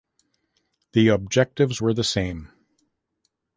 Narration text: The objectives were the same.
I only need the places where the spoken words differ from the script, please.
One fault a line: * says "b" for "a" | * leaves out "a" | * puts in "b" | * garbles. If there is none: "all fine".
all fine